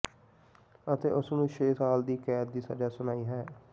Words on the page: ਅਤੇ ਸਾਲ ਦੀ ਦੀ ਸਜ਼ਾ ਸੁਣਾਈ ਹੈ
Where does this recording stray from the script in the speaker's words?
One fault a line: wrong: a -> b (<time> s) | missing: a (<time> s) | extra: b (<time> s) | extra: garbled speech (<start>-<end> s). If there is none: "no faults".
extra: ਉਸ ਨੂੰ ਛੇ (1.1 s)
extra: ਕੈਦ (2.2 s)